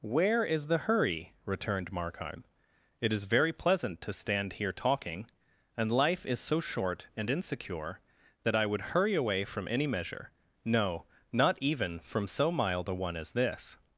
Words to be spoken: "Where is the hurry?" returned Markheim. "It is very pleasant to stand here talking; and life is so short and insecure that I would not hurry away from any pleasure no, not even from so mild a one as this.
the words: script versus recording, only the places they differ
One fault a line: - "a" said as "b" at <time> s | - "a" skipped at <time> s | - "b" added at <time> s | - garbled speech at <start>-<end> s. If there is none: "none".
- "not" skipped at 8.8 s
- "pleasure" said as "measure" at 9.9 s